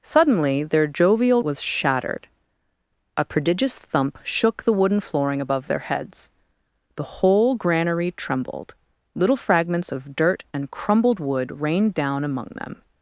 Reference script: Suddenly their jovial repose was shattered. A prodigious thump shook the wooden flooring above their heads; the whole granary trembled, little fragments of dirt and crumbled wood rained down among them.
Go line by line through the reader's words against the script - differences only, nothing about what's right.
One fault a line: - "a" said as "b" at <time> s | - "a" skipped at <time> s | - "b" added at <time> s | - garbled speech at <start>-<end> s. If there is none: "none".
- "repose" skipped at 1.4 s